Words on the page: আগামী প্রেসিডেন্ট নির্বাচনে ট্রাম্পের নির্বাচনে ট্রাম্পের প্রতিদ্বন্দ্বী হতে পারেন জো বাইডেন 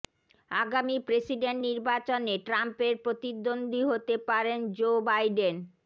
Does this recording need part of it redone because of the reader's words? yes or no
yes